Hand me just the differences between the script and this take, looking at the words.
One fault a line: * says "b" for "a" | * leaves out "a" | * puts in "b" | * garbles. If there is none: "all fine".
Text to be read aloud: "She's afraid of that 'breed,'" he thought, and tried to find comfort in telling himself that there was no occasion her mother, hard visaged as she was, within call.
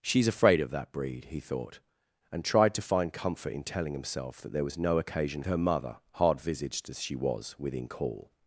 all fine